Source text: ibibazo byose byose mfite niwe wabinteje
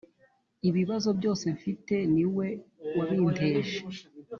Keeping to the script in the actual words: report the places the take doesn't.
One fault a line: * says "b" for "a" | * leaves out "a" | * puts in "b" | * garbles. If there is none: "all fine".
* leaves out "byose"